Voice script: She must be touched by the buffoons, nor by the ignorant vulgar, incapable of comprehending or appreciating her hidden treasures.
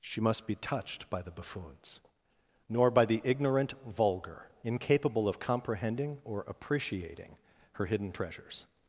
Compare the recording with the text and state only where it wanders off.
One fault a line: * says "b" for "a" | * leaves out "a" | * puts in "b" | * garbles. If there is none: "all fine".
all fine